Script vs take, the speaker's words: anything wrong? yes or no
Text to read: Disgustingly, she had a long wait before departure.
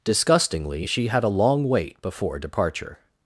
no